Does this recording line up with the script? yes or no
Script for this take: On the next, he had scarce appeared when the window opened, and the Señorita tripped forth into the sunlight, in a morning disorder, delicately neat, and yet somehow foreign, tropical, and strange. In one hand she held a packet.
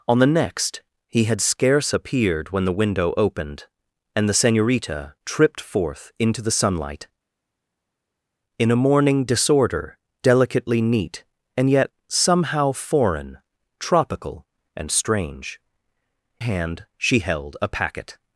no